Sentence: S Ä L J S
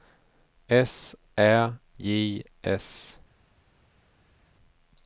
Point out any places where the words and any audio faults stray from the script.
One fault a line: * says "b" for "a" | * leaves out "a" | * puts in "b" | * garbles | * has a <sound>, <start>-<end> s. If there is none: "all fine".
* leaves out "L"